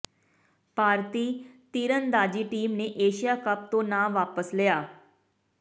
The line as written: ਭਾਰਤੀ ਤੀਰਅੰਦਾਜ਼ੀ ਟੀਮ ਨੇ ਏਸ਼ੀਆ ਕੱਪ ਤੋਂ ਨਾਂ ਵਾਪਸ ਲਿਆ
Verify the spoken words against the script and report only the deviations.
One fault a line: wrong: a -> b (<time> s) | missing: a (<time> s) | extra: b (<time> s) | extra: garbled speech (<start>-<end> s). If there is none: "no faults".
no faults